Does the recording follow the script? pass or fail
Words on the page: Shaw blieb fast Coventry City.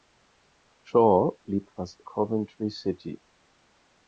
pass